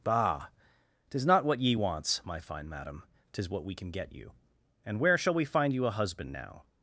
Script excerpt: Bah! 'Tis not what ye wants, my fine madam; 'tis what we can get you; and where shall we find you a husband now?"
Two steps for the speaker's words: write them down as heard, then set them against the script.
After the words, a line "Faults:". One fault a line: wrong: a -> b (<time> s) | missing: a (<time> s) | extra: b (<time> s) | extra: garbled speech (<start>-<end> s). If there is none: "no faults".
Bah! 'Tis not what ye wants, my fine madam; 'tis what we can get you; and where shall we find you a husband now?"
Faults:
no faults